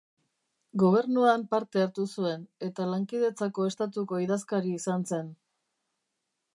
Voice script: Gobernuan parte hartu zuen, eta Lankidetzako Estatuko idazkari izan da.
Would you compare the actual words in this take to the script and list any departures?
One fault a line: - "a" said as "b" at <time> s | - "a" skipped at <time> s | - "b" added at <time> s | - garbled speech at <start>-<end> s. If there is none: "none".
- "da" said as "zen" at 5.1 s